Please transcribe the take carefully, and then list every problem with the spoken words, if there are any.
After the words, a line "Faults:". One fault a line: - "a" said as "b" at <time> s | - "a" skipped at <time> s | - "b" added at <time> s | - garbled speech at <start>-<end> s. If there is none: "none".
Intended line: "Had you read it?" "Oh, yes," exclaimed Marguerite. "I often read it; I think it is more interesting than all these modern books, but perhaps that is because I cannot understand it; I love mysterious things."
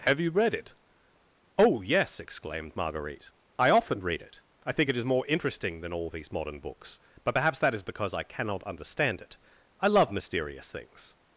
"Have you read it?" "Oh, yes," exclaimed Marguerite. "I often read it; I think it is more interesting than all these modern books, but perhaps that is because I cannot understand it; I love mysterious things."
Faults:
- "Had" said as "Have" at 0.1 s